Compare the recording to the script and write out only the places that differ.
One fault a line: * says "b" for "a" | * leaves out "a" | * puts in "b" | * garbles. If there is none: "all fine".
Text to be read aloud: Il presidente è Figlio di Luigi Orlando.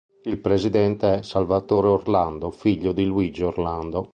* puts in "Salvatore Orlando"